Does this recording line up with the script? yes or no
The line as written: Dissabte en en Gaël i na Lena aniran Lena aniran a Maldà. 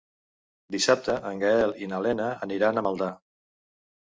no